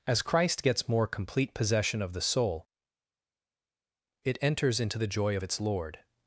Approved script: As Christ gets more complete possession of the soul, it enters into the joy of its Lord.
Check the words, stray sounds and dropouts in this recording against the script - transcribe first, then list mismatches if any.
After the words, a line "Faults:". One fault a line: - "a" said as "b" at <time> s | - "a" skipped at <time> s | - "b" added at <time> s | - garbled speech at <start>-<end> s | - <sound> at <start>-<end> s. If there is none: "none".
As Christ gets more complete possession of the soul, it enters into the joy of its Lord.
Faults:
none